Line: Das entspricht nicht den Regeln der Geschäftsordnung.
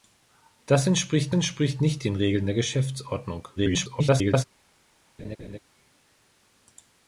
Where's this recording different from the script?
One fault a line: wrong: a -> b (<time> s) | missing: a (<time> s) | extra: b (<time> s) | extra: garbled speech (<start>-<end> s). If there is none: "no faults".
extra: entspricht (1.3 s)
extra: garbled speech (3.6-4.4 s)